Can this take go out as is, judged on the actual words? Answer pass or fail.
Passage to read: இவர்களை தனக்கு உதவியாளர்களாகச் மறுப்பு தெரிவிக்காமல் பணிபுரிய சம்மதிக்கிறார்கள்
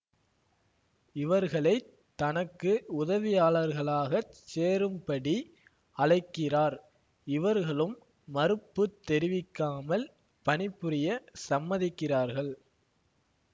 fail